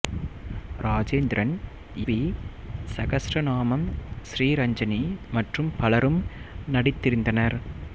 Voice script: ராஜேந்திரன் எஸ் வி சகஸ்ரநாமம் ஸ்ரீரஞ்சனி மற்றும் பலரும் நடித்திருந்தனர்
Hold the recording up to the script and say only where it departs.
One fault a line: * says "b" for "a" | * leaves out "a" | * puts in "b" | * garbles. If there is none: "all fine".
* leaves out "எஸ்"